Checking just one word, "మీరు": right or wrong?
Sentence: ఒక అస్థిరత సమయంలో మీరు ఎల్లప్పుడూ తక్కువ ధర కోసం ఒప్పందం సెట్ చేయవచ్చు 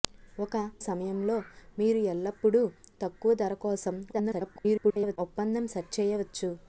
right